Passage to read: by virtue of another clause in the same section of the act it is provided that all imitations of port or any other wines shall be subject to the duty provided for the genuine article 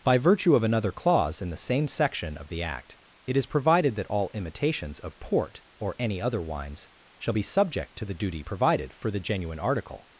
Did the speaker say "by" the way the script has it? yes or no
yes